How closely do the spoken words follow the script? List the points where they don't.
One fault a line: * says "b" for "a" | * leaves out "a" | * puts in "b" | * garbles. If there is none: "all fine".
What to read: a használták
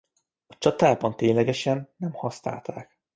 * puts in "csatában ténylegesen nem"